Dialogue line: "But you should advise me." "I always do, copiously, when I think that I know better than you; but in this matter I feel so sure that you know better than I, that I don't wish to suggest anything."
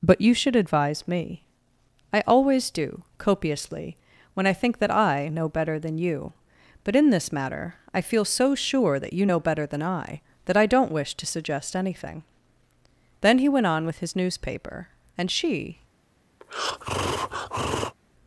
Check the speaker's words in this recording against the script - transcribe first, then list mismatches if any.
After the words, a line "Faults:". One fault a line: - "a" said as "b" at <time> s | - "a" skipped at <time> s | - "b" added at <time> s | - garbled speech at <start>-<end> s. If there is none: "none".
"But you should advise me." "I always do, copiously, when I think that I know better than you; but in this matter I feel so sure that you know better than I, that I don't wish to suggest anything." Then he went on with his newspaper, and she
Faults:
- "Then he went on with his newspaper and she" added at 13.2 s